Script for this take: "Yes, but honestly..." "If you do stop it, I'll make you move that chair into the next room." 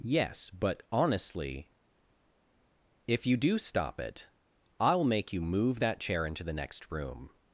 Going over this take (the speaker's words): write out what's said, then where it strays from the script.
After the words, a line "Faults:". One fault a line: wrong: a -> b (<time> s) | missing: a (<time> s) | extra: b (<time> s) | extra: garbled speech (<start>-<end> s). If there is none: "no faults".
"Yes, but honestly..." "If you do stop it, I'll make you move that chair into the next room."
Faults:
no faults